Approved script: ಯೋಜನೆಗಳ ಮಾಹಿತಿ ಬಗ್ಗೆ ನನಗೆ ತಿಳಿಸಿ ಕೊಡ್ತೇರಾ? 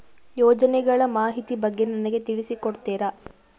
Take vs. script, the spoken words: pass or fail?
pass